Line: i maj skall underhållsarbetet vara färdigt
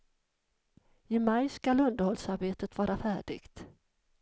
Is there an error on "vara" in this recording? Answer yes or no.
no